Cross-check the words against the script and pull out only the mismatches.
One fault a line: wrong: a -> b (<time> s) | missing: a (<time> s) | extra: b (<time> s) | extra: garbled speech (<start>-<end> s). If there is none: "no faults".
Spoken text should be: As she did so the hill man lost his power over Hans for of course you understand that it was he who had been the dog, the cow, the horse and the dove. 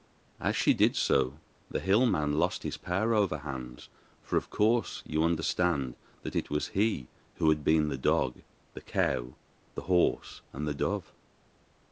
no faults